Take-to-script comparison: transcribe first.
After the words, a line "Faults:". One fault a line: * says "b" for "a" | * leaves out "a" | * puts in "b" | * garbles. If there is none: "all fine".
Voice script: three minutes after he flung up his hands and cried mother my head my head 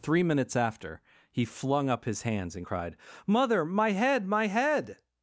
three minutes after he flung up his hands and cried mother my head my head
Faults:
all fine